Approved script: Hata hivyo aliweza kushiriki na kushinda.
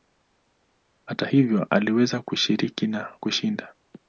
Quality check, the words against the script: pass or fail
pass